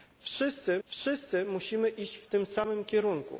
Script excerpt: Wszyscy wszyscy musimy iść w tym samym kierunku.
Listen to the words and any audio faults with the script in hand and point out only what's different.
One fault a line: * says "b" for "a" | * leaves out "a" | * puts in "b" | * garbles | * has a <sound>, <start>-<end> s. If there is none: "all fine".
all fine